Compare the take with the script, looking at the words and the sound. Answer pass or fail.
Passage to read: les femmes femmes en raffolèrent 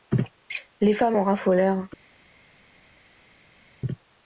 fail